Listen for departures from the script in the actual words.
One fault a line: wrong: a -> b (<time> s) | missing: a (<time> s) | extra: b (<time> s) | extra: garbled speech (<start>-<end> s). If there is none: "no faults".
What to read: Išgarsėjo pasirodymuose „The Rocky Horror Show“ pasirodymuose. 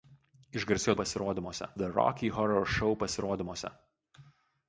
no faults